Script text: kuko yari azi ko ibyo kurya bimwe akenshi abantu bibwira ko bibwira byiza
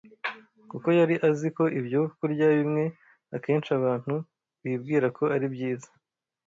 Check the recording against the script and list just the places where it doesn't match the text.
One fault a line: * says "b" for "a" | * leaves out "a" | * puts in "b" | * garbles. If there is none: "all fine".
* says "ari" for "bibwira"